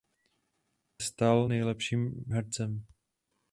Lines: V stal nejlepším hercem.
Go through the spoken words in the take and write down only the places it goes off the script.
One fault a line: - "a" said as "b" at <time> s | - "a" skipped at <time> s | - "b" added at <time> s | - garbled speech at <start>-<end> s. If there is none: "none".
none